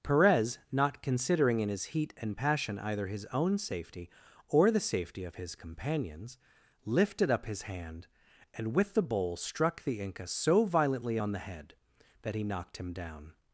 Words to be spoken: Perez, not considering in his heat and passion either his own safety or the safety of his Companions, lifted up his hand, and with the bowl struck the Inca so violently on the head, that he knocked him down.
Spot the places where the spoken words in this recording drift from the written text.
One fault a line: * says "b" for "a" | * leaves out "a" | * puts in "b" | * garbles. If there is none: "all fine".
all fine